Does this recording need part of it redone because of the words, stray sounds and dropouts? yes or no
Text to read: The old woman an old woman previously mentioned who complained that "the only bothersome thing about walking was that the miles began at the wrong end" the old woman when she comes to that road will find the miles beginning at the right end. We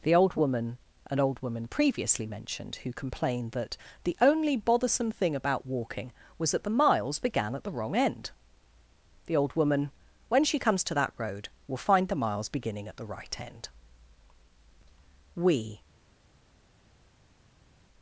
no